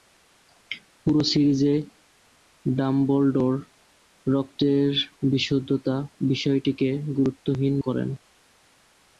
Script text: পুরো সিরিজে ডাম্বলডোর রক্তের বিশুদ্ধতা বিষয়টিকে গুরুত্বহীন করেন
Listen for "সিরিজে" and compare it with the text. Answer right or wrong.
right